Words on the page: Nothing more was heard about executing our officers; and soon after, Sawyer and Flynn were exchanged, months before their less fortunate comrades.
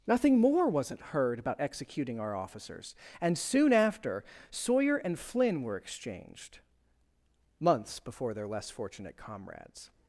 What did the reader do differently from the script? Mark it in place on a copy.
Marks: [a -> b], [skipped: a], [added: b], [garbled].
Nothing more [was -> wasn't] heard about executing our officers; and soon after, Sawyer and Flynn were exchanged, months before their less fortunate comrades.